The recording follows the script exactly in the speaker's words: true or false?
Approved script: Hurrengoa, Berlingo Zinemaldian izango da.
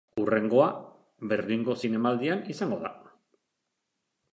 true